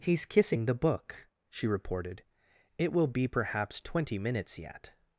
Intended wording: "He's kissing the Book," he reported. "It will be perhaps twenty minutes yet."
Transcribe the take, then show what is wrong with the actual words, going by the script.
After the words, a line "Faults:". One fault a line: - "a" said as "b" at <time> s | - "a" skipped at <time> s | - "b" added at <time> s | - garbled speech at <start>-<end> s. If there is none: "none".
"He's kissing the Book," she reported. "It will be perhaps twenty minutes yet."
Faults:
- "he" said as "she" at 1.5 s